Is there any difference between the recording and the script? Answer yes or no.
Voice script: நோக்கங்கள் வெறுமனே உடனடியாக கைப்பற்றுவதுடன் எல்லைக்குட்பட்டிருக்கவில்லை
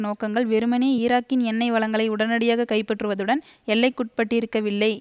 yes